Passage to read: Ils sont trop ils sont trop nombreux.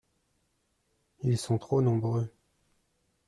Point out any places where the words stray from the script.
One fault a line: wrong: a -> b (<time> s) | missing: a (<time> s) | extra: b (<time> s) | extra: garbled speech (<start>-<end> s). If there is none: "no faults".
missing: ils sont trop (1.8 s)